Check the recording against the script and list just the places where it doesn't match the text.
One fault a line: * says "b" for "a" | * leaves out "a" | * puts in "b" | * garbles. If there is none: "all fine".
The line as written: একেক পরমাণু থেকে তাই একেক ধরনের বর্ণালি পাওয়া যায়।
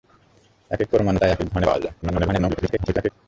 * leaves out "থেকে"
* leaves out "বর্ণালি"
* garbles